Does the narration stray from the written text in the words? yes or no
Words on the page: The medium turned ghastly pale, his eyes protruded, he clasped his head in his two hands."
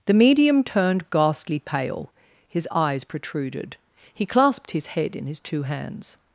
no